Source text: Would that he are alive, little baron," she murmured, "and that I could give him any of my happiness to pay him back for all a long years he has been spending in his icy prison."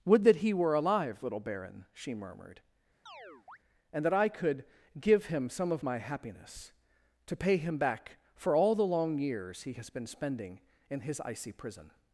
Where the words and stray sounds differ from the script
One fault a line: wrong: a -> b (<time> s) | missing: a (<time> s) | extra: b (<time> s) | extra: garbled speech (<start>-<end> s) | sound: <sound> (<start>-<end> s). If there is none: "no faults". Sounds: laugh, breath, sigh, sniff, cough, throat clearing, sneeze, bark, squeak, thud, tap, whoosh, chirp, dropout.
wrong: are -> were (0.5 s)
sound: chirp (3.1-3.6 s)
wrong: any -> some (5.5 s)
wrong: a -> the (8.7 s)